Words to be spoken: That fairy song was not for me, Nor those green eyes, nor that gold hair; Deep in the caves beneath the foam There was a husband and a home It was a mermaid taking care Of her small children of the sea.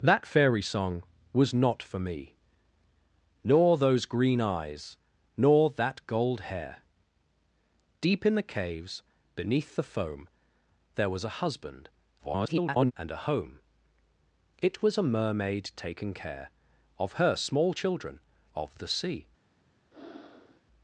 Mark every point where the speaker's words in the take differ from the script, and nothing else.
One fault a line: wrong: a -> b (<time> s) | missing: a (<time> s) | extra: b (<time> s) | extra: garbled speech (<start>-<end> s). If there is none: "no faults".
extra: garbled speech (12.2-12.9 s)